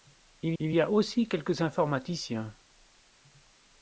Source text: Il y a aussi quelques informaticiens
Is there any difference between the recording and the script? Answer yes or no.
yes